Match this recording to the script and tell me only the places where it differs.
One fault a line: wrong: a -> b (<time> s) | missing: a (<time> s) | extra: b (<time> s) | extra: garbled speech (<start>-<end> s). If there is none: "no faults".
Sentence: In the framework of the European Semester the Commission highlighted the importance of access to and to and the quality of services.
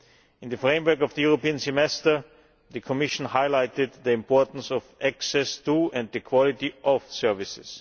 missing: to and (6.1 s)